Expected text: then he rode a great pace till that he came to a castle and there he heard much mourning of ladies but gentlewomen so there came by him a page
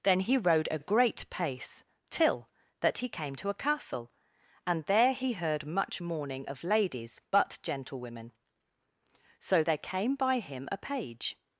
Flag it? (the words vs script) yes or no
no